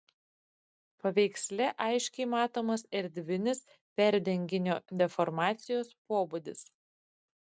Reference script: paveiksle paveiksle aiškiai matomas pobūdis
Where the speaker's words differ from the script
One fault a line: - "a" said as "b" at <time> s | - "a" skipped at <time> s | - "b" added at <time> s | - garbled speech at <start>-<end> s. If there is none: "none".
- "paveiksle" skipped at 1.7 s
- "erdvinis perdenginio deformacijos" added at 3.0 s